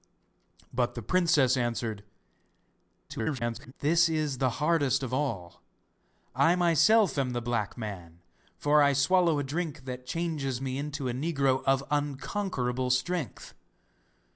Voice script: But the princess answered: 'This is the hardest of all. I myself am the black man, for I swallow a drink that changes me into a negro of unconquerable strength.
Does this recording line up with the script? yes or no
no